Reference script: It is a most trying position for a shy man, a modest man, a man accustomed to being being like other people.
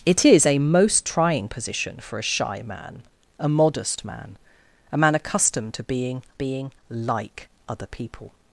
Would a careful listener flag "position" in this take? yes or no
no